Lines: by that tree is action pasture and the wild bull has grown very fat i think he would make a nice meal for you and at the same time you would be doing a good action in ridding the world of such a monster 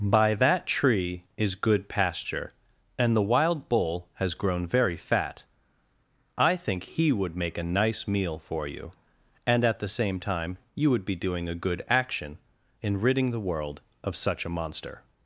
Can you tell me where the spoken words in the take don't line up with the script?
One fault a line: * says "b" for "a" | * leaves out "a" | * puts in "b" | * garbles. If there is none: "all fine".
* says "good" for "action"